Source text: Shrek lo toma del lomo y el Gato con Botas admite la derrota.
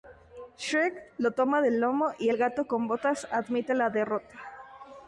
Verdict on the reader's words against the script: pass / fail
pass